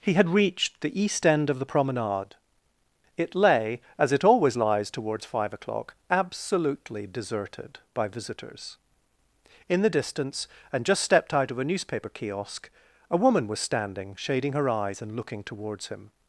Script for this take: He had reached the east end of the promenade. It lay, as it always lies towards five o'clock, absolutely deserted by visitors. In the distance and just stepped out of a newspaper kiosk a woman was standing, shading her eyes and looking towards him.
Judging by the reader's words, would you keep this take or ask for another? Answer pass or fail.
pass